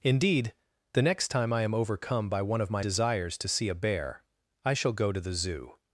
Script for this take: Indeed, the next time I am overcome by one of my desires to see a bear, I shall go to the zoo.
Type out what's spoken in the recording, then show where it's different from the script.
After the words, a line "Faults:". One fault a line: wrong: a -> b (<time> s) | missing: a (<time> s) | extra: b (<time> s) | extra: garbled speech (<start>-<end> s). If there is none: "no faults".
Indeed, the next time I am overcome by one of my desires to see a bear, I shall go to the zoo.
Faults:
no faults